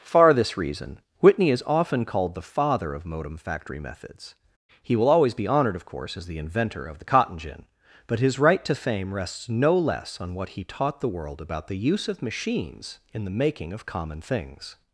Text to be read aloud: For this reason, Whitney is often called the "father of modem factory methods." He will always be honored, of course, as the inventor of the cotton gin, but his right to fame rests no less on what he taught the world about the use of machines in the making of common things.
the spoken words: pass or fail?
fail